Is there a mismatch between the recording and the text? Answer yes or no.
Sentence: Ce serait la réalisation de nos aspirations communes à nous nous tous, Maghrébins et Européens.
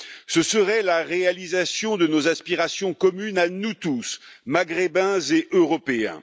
yes